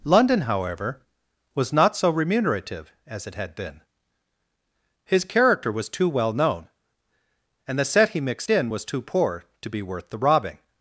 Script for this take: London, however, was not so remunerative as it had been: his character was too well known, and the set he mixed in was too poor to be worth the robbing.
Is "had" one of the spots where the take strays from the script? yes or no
no